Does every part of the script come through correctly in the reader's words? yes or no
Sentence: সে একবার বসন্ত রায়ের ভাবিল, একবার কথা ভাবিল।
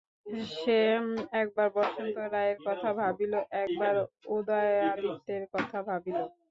no